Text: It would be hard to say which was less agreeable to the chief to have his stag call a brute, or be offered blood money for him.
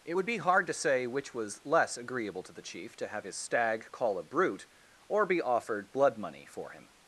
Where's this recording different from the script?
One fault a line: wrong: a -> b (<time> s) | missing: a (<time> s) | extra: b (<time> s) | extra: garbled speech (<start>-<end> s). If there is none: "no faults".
no faults